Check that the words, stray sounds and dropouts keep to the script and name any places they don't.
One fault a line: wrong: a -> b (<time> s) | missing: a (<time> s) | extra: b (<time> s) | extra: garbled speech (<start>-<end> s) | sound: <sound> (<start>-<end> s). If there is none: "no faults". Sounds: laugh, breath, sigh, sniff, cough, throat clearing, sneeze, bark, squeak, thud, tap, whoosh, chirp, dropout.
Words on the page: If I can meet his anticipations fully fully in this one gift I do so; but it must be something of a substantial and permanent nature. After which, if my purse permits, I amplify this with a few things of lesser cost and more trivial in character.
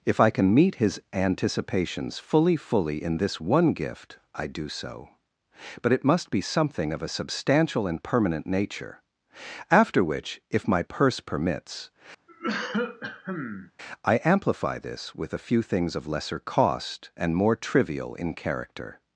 sound: cough (12.3-13.7 s)